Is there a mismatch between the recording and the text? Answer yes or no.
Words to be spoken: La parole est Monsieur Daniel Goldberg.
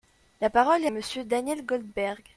no